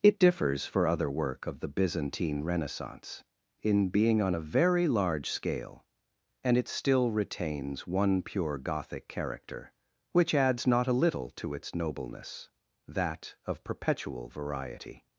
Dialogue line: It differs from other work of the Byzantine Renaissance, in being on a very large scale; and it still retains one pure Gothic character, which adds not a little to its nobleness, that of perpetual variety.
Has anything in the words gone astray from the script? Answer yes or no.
yes